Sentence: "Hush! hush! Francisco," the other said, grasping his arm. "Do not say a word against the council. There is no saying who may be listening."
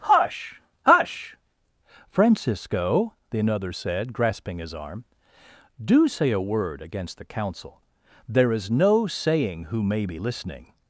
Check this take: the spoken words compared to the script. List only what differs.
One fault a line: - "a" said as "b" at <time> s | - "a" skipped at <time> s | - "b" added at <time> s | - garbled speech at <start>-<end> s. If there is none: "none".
- "other" said as "another" at 3.4 s
- "not" skipped at 6.1 s